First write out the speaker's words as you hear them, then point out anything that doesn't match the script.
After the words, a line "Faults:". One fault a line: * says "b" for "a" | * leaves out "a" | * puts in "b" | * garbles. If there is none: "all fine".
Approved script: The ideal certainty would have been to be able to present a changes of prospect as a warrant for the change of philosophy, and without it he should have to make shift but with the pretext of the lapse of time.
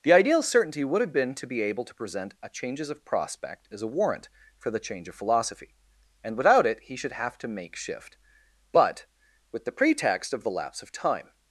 The ideal certainty would have been to be able to present a changes of prospect as a warrant for the change of philosophy, and without it he should have to make shift but with the pretext of the lapse of time.
Faults:
all fine